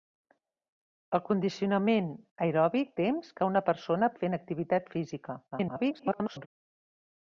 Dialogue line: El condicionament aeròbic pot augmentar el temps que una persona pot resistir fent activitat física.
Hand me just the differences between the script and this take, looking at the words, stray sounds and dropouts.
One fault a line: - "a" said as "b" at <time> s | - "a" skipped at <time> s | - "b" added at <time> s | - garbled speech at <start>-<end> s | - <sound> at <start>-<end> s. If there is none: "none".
- "pot augmentar el" skipped at 2.9 s
- "pot resistir" skipped at 4.1 s
- garbled speech at 5.5-6.5 s